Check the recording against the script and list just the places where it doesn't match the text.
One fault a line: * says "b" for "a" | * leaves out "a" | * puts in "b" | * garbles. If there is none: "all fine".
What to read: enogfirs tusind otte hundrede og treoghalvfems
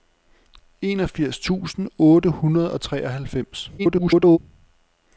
* garbles